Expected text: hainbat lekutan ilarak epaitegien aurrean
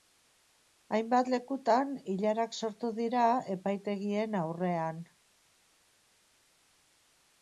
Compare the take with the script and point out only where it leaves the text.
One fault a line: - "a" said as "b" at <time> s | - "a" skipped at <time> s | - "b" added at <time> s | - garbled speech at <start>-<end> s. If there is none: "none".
- "sortu dira" added at 2.6 s